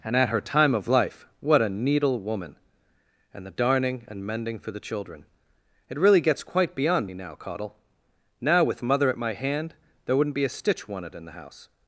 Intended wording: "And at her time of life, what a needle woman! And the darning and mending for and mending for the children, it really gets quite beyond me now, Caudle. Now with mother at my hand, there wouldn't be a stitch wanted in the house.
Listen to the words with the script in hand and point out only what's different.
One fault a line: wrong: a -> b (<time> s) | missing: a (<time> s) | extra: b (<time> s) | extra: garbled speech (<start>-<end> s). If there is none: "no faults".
missing: and mending for (4.7 s)